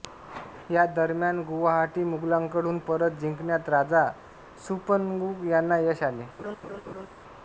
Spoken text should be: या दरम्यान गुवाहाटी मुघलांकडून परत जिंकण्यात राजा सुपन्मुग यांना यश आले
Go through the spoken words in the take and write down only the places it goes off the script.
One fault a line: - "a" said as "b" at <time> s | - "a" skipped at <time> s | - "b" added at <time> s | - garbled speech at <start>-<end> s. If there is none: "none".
none